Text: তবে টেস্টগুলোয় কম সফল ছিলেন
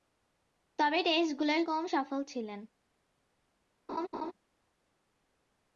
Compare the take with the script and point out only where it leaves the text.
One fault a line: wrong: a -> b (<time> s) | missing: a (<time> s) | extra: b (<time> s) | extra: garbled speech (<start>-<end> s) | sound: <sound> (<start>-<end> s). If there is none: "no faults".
sound: laugh (3.9-4.3 s)